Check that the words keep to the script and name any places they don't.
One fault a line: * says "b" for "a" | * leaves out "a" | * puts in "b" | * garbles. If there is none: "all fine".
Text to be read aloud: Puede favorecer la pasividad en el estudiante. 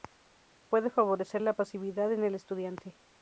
all fine